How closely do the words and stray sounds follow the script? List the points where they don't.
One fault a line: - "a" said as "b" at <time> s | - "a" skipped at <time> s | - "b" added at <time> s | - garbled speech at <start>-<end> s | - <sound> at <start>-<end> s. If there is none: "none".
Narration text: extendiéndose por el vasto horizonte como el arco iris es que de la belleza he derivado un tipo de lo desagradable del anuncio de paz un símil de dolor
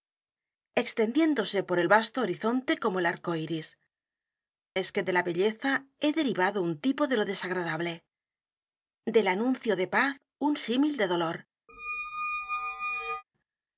- squeak at 11.7-13.2 s